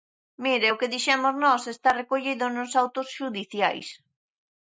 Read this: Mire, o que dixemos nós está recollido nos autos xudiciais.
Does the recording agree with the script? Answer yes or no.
yes